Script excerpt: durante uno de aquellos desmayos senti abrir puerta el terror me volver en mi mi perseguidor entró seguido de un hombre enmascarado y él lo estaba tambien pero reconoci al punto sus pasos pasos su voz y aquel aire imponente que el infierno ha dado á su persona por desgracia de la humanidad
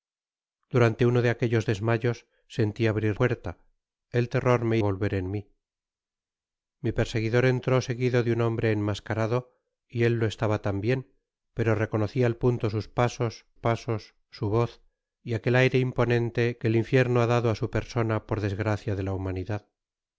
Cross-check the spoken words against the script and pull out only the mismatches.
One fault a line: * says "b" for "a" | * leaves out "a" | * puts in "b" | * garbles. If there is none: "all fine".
all fine